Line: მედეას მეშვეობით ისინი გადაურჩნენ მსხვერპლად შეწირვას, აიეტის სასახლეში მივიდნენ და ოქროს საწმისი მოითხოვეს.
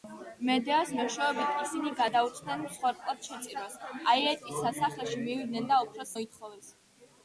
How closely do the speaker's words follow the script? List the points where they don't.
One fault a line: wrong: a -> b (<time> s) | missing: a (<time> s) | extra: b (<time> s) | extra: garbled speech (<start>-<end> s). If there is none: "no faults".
missing: საწმისი (6.2 s)